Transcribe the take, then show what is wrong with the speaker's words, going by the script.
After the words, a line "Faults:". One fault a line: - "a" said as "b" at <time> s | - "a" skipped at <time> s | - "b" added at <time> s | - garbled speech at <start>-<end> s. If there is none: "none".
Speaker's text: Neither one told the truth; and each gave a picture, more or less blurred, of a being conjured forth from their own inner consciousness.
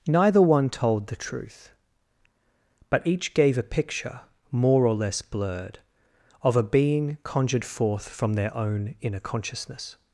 Neither one told the truth; but each gave a picture, more or less blurred, of a being conjured forth from their own inner consciousness.
Faults:
- "and" said as "but" at 2.9 s